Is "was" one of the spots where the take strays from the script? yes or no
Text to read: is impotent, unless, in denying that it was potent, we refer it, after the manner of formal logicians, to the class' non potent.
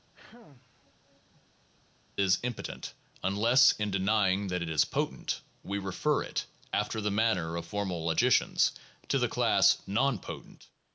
yes